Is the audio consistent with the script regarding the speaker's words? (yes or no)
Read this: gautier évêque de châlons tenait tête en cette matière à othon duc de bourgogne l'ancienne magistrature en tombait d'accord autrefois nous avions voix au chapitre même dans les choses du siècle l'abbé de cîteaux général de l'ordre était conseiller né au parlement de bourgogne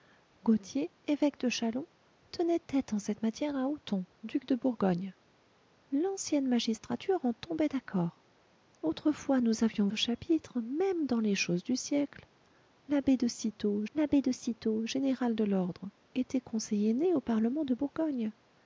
no